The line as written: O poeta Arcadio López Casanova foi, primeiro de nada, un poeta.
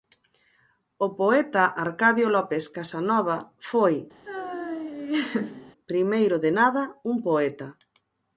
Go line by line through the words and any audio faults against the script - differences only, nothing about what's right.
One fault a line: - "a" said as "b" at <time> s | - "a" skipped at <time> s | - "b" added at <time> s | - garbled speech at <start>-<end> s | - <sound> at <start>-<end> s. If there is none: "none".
- laugh at 4.3-5.7 s